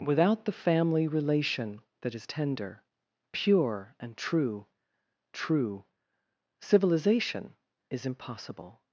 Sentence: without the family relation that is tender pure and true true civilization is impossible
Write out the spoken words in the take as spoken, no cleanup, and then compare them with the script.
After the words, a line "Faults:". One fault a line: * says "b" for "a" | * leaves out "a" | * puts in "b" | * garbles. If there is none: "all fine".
without the family relation that is tender pure and true true civilization is impossible
Faults:
all fine